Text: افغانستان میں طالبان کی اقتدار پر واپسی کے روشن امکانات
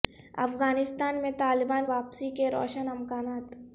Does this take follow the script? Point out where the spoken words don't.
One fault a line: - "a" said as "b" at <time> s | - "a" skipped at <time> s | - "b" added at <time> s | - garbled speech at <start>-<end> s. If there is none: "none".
- "کی اقتدار پر" skipped at 1.9 s